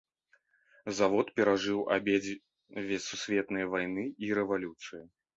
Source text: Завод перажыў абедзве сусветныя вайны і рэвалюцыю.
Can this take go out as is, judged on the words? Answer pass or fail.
pass